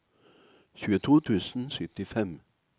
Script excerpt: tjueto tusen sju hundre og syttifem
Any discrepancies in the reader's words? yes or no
yes